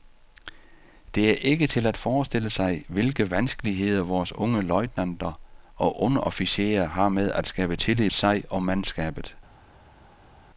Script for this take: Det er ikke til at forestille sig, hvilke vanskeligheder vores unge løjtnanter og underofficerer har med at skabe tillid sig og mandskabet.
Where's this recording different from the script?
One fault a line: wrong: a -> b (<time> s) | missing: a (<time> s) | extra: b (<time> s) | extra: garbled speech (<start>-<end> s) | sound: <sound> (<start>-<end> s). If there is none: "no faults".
no faults